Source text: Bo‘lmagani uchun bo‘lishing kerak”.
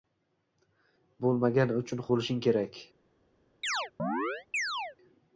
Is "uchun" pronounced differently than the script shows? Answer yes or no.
no